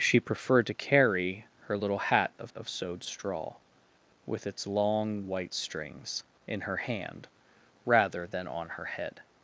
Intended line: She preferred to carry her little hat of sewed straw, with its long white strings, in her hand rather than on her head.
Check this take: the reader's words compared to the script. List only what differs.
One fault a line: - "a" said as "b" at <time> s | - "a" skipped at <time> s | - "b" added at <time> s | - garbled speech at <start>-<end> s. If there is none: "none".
- "of" added at 2.6 s